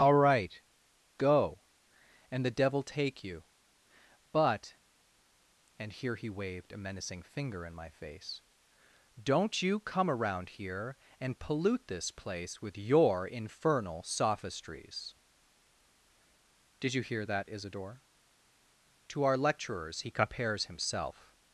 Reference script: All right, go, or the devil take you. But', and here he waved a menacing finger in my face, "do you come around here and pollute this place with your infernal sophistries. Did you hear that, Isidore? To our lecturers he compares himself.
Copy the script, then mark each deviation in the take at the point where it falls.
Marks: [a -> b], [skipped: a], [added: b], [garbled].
All right, go, [or -> and] the devil take you. But', and here he waved a menacing finger in my face, ["do -> don't] you come around here and pollute this place with your infernal sophistries. Did you hear that, Isidore? To our lecturers he compares himself.